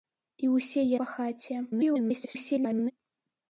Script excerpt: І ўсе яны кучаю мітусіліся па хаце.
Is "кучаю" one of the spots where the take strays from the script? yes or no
yes